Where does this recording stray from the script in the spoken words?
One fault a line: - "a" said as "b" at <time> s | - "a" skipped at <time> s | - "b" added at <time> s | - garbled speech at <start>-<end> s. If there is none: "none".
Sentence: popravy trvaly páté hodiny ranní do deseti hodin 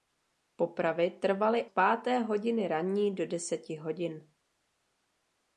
none